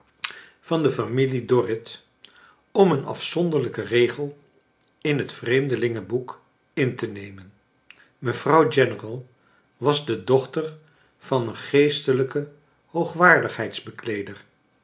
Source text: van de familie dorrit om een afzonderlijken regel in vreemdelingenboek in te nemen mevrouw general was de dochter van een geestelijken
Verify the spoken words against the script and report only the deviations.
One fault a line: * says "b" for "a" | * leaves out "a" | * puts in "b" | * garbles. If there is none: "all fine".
* puts in "het"